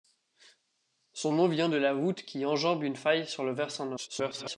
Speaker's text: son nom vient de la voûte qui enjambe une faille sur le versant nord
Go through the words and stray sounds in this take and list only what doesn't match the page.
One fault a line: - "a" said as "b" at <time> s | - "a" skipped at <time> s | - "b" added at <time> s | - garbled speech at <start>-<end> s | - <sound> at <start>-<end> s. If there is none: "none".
- garbled speech at 4.0-4.6 s